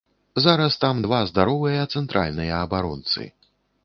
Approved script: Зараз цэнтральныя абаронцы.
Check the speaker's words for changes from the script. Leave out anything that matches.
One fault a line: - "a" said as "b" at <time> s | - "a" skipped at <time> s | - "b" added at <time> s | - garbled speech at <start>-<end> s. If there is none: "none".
- "там два здаровыя" added at 0.8 s